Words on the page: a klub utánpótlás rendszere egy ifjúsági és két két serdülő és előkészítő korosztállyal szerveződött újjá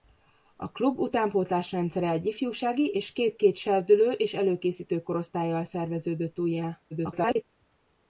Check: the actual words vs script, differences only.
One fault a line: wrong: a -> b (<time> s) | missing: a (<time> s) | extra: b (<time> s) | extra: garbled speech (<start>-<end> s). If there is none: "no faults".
extra: garbled speech (6.9-7.4 s)